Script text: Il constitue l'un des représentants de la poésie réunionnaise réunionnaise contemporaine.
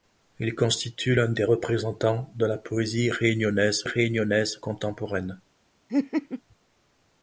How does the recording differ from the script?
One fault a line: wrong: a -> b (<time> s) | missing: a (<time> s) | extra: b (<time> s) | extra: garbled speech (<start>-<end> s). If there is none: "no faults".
no faults